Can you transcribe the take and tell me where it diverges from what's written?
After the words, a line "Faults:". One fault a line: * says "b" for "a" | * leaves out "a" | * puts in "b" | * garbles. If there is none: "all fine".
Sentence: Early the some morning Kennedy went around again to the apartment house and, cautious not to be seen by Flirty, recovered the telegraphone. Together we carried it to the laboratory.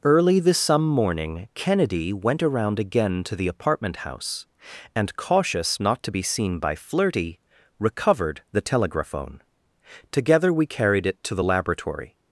Early the some morning Kennedy went around again to the apartment house and, cautious not to be seen by Flirty, recovered the telegraphone. Together we carried it to the laboratory.
Faults:
all fine